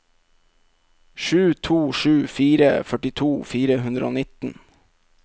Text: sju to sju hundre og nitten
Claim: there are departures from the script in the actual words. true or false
true